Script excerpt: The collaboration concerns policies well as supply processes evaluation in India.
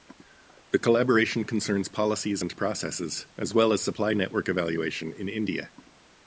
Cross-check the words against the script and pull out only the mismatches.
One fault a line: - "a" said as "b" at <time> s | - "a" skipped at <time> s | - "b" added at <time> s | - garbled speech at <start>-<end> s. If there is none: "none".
- "and processes as" added at 2.4 s
- "processes" said as "network" at 4.1 s